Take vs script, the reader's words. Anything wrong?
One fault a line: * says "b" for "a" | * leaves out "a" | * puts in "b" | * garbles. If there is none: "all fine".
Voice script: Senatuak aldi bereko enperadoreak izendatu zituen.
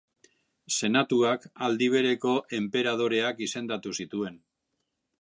all fine